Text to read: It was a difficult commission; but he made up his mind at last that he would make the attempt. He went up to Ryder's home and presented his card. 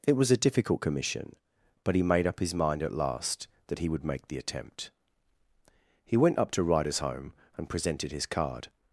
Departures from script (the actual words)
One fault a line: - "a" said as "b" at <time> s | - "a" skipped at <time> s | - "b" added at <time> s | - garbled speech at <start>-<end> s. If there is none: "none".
none